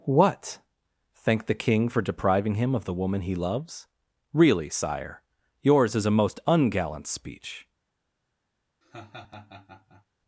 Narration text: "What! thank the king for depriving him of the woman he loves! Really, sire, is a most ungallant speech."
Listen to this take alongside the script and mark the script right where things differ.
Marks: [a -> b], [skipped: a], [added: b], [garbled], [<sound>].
"What! thank the king for depriving him of the woman he loves! Really, sire, [added: yours] is a most ungallant speech." [laugh]